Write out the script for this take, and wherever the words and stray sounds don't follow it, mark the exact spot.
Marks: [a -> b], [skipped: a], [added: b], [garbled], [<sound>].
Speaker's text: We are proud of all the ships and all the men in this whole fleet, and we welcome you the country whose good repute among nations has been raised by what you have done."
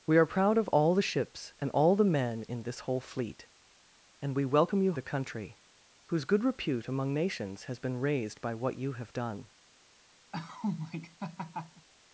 We are proud of all the ships and all the men in this whole fleet, and we welcome you the country whose good repute among nations has been raised by what you have done." [laugh]